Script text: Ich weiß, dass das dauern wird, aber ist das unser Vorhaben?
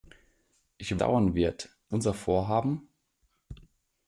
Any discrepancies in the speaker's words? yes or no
yes